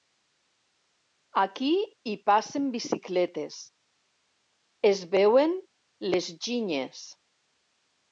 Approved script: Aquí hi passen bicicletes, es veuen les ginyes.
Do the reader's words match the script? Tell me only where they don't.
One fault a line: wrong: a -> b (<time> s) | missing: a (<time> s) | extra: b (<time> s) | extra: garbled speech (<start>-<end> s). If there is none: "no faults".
no faults